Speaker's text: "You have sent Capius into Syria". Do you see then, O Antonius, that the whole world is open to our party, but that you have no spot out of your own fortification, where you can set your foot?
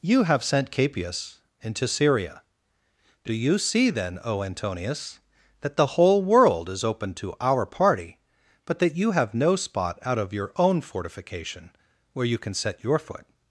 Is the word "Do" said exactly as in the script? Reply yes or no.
yes